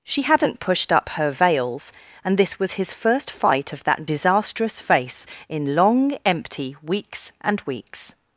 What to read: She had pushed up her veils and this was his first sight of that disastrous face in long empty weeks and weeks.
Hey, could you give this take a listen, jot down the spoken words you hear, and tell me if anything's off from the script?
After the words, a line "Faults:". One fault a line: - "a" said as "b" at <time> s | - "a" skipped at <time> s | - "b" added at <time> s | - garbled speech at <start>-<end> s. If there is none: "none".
She hadn't pushed up her veils and this was his first fight of that disastrous face in long empty weeks and weeks.
Faults:
- "had" said as "hadn't" at 0.2 s
- "sight" said as "fight" at 3.3 s